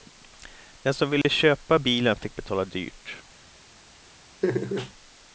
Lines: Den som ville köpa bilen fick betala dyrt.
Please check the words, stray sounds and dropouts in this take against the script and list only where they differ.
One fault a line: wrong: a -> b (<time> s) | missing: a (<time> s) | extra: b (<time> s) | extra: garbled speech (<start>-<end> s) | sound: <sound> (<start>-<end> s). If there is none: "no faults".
sound: dropout (1.2-1.2 s)
sound: laugh (4.4-4.9 s)